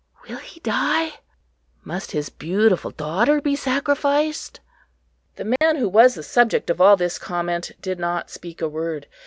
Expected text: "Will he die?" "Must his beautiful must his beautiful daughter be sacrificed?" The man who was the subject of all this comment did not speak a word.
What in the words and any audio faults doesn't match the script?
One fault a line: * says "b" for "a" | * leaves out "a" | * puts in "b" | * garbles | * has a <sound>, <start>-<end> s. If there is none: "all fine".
* leaves out "must his beautiful"
* has a dropout, 5.6-5.6 s